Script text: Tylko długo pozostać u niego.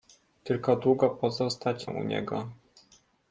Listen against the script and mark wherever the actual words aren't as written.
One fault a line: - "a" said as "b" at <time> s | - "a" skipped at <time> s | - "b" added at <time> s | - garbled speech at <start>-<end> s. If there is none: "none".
none